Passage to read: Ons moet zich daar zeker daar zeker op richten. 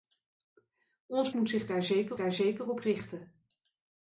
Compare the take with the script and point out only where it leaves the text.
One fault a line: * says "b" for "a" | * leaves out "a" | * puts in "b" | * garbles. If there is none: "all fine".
all fine